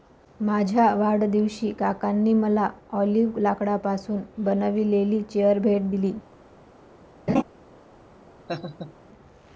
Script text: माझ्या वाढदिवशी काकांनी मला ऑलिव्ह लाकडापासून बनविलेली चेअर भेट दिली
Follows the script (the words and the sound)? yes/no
no